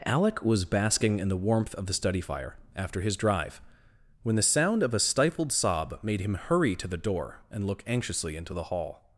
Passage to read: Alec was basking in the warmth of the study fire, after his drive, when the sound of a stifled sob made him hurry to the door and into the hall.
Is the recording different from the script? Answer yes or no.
yes